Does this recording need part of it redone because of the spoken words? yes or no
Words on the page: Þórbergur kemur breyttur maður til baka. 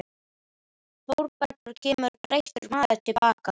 no